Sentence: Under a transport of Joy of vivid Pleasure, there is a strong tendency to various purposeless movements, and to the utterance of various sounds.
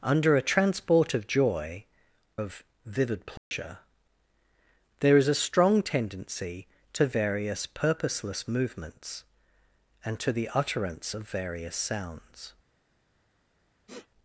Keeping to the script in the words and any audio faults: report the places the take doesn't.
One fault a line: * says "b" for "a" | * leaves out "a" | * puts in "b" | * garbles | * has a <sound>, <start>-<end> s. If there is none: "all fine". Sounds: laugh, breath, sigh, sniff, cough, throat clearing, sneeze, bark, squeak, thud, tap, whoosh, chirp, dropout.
* has a dropout, 3.4-3.5 s
* has a sniff, 13.9-14.1 s